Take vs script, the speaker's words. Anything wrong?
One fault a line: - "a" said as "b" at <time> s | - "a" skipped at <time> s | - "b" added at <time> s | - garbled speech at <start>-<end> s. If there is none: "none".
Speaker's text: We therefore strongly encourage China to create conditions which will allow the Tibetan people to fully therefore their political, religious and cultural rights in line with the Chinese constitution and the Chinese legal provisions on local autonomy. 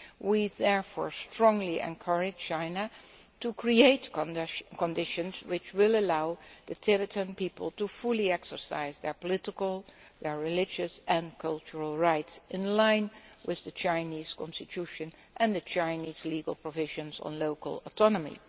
- "therefore" said as "exercise" at 8.3 s